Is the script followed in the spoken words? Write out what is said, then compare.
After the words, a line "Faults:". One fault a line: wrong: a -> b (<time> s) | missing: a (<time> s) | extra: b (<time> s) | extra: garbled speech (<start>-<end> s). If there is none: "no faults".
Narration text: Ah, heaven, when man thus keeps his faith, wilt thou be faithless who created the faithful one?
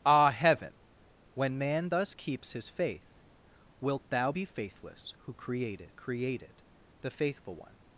Ah, heaven, when man thus keeps his faith, wilt thou be faithless who created created the faithful one?
Faults:
extra: created (6.0 s)